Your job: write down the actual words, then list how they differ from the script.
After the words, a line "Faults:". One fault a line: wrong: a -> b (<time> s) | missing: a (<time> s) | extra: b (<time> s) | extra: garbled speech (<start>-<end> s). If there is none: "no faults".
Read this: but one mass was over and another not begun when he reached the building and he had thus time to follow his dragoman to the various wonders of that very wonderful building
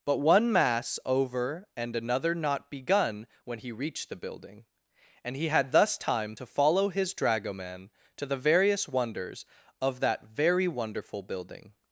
but one mass over and another not begun when he reached the building and he had thus time to follow his dragoman to the various wonders of that very wonderful building
Faults:
missing: was (1.0 s)